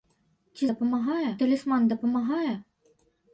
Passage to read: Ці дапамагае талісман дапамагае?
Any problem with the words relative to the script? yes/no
no